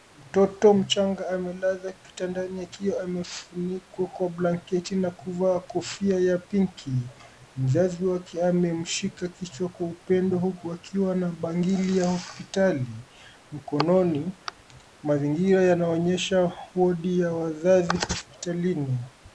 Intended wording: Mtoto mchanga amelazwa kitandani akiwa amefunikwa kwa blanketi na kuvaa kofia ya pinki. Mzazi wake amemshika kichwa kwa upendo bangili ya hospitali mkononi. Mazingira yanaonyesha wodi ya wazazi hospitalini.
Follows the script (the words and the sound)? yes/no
no